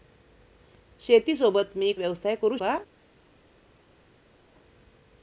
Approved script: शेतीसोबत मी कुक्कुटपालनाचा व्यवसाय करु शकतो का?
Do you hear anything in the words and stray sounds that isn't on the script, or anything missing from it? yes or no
yes